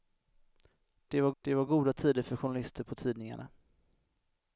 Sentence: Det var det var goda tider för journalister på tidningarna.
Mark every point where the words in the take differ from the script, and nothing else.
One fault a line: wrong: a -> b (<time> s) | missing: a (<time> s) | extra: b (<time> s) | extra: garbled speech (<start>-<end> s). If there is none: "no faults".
no faults